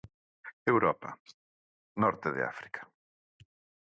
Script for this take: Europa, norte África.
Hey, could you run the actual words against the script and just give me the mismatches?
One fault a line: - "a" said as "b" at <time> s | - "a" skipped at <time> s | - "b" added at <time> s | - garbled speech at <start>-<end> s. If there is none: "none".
- "de" added at 2.3 s